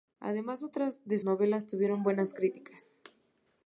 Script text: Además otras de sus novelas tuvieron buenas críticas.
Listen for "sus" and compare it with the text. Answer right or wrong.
wrong